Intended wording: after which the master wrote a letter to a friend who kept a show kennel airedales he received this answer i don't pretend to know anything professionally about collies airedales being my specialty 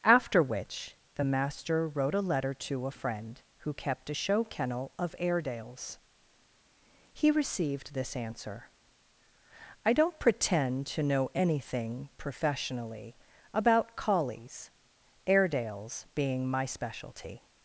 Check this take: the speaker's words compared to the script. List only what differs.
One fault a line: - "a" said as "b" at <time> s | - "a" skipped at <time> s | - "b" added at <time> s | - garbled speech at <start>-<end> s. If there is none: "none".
- "of" added at 5.0 s